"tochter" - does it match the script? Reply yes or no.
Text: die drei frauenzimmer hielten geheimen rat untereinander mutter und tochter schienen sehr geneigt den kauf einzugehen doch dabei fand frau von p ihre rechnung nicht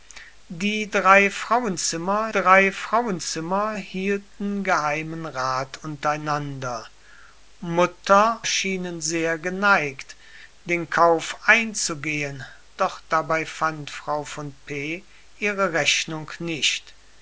no